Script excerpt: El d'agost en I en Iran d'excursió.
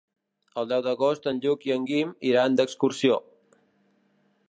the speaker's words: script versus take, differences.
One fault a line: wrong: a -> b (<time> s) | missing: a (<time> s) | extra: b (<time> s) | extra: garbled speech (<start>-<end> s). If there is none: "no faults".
extra: deu (0.7 s)
extra: Lluc (1.5 s)
extra: Guim (1.9 s)